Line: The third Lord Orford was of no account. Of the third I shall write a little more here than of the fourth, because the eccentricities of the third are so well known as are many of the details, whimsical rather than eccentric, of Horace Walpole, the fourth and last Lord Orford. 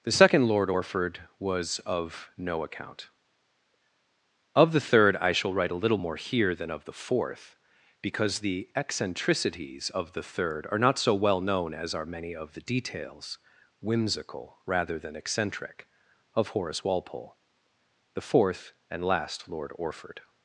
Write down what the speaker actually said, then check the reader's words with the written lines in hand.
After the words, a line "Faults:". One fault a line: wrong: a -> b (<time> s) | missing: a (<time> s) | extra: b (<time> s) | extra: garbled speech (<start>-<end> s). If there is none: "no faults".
The second Lord Orford was of no account. Of the third I shall write a little more here than of the fourth, because the eccentricities of the third are not so well known as are many of the details, whimsical rather than eccentric, of Horace Walpole, the fourth and last Lord Orford.
Faults:
wrong: third -> second (0.1 s)
extra: not (10.8 s)